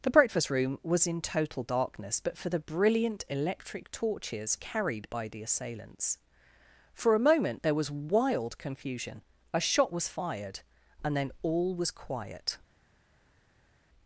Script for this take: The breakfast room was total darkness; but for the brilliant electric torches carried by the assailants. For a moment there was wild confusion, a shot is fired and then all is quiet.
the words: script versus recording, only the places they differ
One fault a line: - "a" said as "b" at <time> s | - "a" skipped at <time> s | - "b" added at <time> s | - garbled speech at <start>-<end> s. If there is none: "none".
- "in" added at 1.1 s
- "is" said as "was" at 9.9 s
- "is" said as "was" at 11.8 s